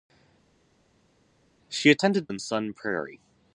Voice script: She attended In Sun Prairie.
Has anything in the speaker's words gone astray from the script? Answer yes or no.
no